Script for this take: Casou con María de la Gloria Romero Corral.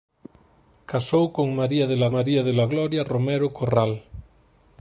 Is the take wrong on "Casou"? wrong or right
right